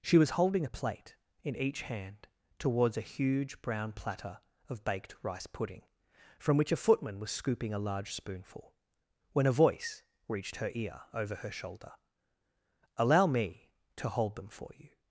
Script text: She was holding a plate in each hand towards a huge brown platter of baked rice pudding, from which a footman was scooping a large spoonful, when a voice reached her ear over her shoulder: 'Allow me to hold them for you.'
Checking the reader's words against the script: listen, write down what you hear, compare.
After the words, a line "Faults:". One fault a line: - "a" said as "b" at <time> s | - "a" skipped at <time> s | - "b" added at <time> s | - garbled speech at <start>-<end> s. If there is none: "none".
She was holding a plate in each hand towards a huge brown platter of baked rice pudding, from which a footman was scooping a large spoonful, when a voice reached her ear over her shoulder: 'Allow me to hold them for you.'
Faults:
none